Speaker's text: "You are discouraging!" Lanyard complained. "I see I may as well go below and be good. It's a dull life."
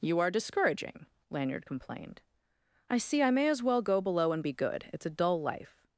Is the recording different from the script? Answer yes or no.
no